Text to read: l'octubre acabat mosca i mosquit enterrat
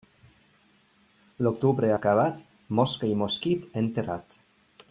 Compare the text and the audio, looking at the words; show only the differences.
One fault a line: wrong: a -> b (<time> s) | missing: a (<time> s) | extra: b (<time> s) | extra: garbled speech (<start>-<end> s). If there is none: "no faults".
no faults